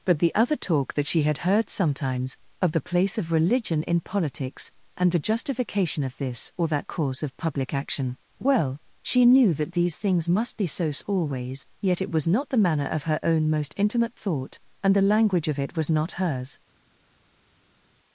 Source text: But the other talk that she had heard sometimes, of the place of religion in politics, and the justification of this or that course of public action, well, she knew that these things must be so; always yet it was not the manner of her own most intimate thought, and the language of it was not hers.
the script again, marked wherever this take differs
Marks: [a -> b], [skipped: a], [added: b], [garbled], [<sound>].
But the other talk that she had heard sometimes, of the place of religion in politics, and the justification of this or that course of public action, well, she knew that these things must be so; always yet it was not the manner of her own most intimate thought, and the language of it was not hers.